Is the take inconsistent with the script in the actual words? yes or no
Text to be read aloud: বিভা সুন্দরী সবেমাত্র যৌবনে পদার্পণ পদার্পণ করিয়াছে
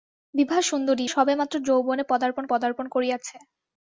no